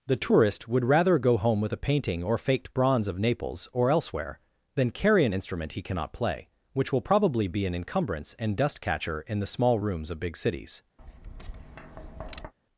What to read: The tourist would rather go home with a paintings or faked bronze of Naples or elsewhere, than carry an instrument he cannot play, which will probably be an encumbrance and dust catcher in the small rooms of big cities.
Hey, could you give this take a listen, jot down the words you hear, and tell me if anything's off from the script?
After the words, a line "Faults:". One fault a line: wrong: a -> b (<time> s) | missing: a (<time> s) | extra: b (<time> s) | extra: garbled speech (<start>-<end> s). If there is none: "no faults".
The tourist would rather go home with a painting or faked bronze of Naples or elsewhere, than carry an instrument he cannot play, which will probably be an encumbrance and dust catcher in the small rooms of big cities.
Faults:
wrong: paintings -> painting (1.8 s)